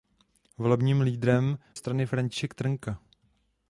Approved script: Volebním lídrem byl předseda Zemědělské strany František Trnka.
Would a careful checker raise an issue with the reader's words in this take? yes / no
yes